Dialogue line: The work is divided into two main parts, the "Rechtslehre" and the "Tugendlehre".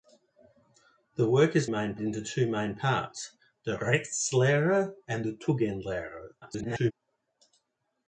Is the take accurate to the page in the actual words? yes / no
no